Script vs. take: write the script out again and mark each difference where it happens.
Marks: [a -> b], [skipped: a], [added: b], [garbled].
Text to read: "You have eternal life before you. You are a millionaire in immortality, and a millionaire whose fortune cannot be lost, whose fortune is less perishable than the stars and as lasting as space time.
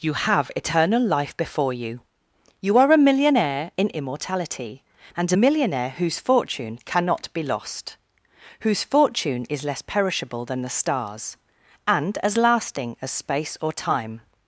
"You have eternal life before you. You are a millionaire in immortality, and a millionaire whose fortune cannot be lost, whose fortune is less perishable than the stars and as lasting as space [added: or] time.